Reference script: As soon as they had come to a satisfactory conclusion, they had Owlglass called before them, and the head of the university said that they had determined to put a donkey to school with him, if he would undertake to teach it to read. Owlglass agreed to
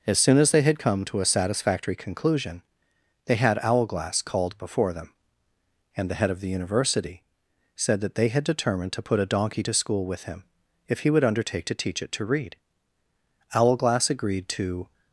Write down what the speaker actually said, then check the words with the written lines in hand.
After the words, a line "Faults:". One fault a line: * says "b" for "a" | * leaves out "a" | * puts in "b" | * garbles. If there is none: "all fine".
As soon as they had come to a satisfactory conclusion, they had Owlglass called before them, and the head of the university said that they had determined to put a donkey to school with him, if he would undertake to teach it to read. Owlglass agreed to
Faults:
all fine